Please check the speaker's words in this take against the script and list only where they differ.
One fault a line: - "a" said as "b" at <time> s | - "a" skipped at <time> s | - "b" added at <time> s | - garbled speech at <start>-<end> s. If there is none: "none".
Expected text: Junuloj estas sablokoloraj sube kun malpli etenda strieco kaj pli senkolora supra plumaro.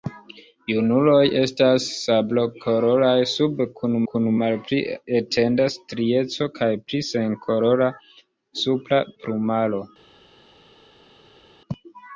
- "kun" added at 4.1 s